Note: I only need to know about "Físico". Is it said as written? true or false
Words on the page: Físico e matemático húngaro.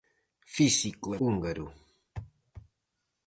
true